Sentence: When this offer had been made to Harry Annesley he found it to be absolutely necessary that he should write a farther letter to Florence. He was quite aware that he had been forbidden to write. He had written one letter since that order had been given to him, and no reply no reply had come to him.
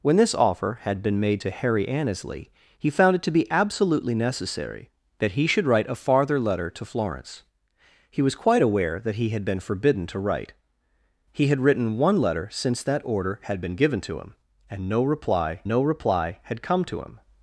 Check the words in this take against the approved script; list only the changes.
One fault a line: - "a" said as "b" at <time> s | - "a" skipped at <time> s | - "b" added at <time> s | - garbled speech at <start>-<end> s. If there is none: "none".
none